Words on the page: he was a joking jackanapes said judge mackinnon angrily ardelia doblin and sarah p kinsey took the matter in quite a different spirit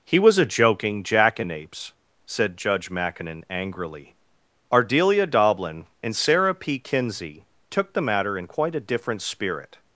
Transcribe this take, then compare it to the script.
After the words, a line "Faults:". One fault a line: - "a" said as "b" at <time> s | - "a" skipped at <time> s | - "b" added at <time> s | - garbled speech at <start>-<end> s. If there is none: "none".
he was a joking jackanapes said judge mackinnon angrily ardelia doblin and sarah p kinsey took the matter in quite a different spirit
Faults:
none